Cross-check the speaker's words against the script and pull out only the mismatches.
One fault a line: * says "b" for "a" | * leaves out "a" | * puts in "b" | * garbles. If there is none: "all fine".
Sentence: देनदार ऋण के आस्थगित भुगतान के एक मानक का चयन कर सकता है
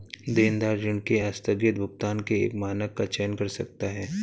all fine